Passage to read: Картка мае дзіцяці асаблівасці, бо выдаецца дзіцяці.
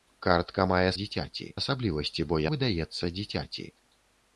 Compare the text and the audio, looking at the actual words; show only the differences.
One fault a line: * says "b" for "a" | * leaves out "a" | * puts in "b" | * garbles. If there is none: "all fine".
all fine